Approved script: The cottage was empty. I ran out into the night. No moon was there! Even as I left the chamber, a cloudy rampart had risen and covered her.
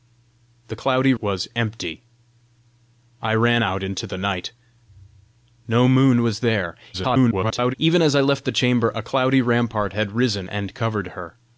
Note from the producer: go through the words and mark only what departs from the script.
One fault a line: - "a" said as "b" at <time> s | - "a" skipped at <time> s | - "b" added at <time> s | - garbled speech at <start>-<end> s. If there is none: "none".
- "cottage" said as "cloudy" at 0.7 s
- garbled speech at 6.9-7.7 s